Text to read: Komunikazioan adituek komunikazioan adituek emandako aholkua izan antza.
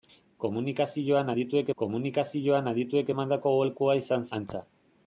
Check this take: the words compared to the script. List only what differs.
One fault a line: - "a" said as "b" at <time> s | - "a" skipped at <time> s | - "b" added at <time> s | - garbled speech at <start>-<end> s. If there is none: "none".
none